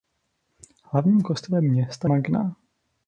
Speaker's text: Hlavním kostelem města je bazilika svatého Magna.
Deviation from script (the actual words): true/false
true